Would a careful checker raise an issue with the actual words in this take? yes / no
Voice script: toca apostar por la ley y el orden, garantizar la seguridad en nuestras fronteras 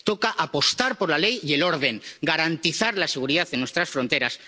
no